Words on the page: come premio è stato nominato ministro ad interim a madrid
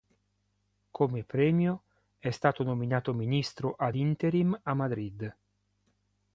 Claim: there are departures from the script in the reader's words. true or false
false